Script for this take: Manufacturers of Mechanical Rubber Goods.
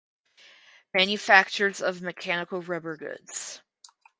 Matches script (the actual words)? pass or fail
pass